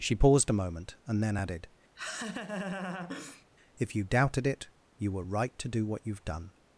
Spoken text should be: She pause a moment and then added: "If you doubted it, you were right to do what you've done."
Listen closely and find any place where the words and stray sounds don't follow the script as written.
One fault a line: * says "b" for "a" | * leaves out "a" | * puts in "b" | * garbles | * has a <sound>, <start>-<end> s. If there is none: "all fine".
* says "paused" for "pause"
* has a laugh, 2.0-3.5 s